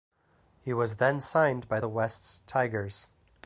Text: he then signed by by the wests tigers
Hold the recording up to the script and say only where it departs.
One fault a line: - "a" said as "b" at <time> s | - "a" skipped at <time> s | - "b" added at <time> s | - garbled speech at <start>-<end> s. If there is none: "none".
- "was" added at 0.7 s
- "by" skipped at 1.8 s